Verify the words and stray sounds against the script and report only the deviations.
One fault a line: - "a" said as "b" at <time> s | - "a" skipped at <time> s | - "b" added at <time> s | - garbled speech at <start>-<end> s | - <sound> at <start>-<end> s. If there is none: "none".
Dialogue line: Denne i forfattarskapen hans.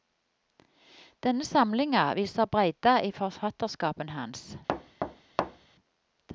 - "samlinga viser breidda" added at 1.4 s
- thud at 4.7-5.7 s